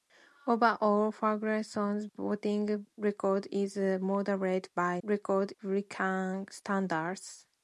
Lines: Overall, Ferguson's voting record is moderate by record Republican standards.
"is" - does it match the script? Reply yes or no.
yes